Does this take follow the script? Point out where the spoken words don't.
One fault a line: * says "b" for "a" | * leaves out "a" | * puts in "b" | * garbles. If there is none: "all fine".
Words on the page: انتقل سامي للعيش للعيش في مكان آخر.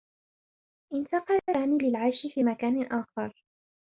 * leaves out "للعيش"